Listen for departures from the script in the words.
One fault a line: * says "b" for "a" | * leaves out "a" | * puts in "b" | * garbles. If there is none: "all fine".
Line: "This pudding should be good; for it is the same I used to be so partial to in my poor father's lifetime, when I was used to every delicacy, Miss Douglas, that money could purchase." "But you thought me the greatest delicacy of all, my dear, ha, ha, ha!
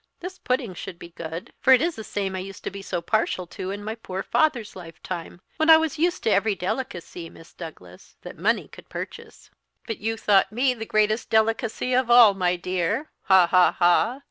all fine